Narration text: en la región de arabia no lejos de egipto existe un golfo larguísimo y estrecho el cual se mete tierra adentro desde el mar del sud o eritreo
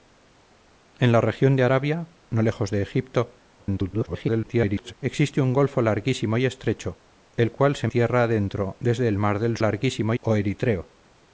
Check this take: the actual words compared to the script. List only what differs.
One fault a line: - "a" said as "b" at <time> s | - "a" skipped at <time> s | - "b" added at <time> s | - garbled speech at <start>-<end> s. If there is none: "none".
- garbled speech at 3.6-4.9 s
- "mete" skipped at 7.9 s
- "sud" said as "larguísimo" at 9.6 s